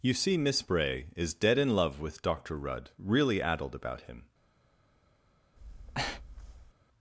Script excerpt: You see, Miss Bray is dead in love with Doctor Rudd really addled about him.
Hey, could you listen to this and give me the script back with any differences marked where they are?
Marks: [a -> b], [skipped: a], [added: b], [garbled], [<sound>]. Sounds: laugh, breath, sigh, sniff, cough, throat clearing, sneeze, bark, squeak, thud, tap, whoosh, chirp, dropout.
You see, Miss Bray is dead in love with Doctor Rudd really addled about him. [breath]